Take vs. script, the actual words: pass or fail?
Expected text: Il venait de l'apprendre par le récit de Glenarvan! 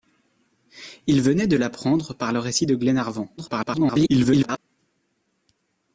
fail